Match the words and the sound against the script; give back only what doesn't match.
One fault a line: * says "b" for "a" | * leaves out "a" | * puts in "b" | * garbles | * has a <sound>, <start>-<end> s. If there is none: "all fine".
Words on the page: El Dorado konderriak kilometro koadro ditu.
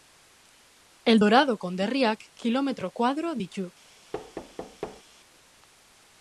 * has a thud, 4.1-5.0 s